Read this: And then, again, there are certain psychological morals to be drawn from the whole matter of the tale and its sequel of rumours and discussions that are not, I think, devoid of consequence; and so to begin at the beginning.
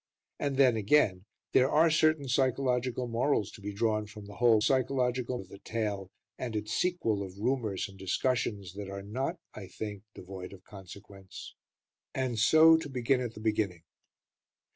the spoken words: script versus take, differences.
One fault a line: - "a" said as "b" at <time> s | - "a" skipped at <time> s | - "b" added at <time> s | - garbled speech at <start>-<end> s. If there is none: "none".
- "matter" said as "psychological" at 4.6 s